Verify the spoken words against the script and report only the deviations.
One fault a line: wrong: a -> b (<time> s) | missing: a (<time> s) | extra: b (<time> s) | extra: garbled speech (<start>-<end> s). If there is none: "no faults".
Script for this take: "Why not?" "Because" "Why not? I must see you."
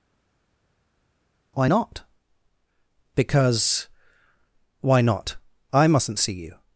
wrong: must -> mustn't (5.9 s)